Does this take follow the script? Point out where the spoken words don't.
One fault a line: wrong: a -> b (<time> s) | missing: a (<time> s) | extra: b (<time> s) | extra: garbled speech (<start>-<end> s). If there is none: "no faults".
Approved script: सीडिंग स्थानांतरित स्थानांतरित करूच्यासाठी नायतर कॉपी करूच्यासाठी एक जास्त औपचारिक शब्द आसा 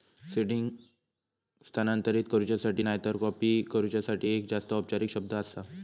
missing: स्थानांतरित (2.2 s)